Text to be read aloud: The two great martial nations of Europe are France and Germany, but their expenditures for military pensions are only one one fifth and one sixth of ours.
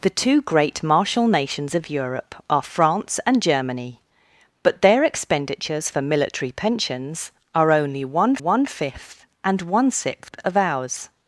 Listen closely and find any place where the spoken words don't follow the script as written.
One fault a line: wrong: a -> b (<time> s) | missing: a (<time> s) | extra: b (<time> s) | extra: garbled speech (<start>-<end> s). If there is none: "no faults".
no faults